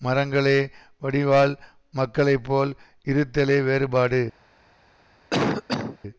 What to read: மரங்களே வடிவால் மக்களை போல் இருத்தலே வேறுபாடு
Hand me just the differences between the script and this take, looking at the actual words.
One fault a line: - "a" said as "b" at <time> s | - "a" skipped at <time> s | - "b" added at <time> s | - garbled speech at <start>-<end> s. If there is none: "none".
none